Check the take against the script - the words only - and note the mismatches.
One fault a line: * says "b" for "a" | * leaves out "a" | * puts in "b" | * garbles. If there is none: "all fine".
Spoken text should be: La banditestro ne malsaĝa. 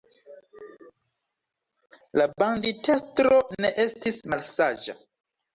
* puts in "estis"